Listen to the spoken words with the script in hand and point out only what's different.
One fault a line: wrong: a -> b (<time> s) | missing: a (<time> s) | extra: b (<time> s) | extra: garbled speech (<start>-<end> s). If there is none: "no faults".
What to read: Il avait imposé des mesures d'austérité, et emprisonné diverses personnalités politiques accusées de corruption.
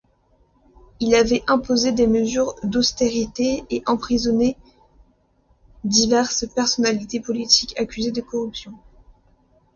no faults